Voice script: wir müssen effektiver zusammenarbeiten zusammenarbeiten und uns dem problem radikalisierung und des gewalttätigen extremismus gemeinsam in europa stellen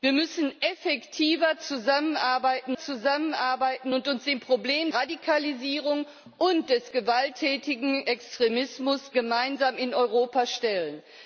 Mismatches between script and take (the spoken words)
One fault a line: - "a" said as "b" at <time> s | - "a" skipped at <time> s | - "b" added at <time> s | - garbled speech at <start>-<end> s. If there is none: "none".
none